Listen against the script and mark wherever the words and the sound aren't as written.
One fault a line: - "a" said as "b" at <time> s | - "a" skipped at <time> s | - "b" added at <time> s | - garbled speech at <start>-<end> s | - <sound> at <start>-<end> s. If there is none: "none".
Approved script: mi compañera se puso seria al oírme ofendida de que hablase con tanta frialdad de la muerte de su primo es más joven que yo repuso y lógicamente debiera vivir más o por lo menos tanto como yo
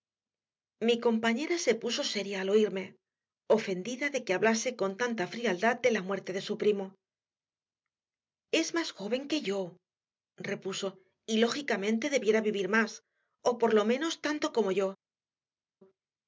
none